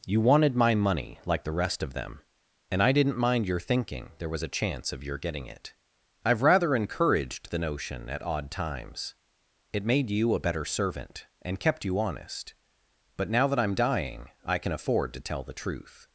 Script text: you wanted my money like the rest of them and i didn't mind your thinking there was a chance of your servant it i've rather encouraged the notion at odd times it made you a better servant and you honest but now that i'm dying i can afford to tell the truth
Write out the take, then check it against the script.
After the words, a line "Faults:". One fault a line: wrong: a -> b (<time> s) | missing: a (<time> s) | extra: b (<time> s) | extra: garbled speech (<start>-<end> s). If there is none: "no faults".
you wanted my money like the rest of them and i didn't mind your thinking there was a chance of your getting it i've rather encouraged the notion at odd times it made you a better servant and kept you honest but now that i'm dying i can afford to tell the truth
Faults:
wrong: servant -> getting (5.2 s)
extra: kept (11.6 s)